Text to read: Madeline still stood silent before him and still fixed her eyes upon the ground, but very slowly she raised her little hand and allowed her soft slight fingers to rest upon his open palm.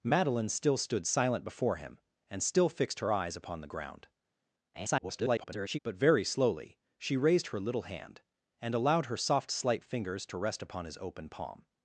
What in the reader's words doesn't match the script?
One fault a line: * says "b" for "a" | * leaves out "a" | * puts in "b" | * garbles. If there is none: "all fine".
* garbles